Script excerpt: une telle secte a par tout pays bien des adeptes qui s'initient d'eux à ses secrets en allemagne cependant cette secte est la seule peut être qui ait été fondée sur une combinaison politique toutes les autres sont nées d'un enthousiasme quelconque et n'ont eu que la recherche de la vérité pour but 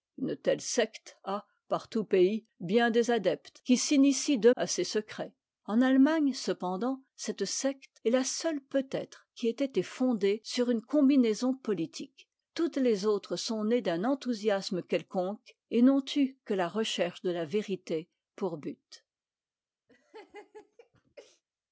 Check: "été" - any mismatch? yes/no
no